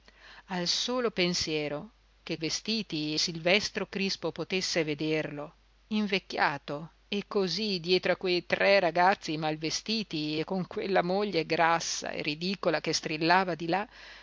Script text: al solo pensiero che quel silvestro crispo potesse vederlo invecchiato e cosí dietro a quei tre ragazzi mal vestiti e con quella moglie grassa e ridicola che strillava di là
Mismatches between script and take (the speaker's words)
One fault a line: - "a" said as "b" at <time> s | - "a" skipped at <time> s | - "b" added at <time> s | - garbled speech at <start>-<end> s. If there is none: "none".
- "quel" said as "vestiti" at 2.4 s